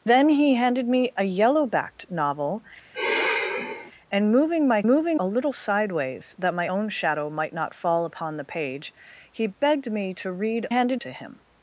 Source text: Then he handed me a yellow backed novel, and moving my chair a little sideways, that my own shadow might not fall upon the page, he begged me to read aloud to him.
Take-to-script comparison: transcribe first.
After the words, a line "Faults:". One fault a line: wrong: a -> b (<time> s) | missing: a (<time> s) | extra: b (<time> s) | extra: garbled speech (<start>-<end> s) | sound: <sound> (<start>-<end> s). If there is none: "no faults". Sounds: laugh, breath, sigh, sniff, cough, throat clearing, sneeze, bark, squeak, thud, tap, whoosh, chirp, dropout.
Then he handed me a yellow backed novel, and moving my moving a little sideways, that my own shadow might not fall upon the page, he begged me to read handed to him.
Faults:
sound: sigh (2.9-3.9 s)
wrong: chair -> moving (4.9 s)
wrong: aloud -> handed (10.7 s)